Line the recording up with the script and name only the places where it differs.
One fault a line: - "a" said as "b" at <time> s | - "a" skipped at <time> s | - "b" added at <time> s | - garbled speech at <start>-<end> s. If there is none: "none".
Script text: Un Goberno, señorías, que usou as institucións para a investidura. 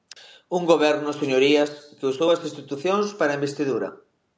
none